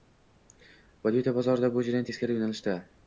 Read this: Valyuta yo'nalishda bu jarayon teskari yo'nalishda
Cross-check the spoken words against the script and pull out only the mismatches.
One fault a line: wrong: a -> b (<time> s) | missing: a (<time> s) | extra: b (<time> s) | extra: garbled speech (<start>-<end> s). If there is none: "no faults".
wrong: yo'nalishda -> bozorida (1.4 s)